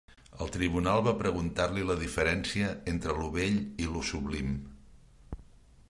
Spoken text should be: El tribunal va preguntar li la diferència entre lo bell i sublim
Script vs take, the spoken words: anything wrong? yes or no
yes